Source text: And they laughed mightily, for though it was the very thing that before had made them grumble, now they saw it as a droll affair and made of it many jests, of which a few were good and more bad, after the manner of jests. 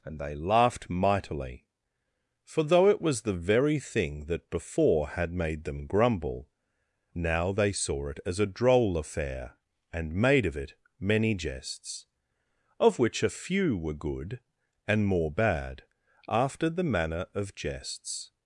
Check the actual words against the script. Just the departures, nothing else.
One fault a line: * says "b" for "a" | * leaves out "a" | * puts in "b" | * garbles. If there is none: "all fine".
all fine